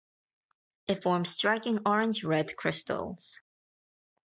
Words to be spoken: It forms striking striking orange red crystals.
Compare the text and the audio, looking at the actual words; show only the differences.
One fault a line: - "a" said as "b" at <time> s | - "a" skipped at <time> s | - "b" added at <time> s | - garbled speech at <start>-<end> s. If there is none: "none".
- "striking" skipped at 1.8 s